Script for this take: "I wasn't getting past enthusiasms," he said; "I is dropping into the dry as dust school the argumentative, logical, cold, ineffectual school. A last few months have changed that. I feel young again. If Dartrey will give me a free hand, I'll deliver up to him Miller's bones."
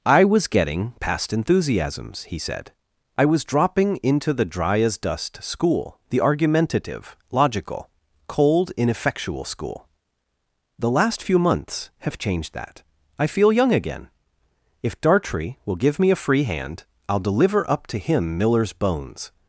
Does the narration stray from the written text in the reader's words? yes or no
yes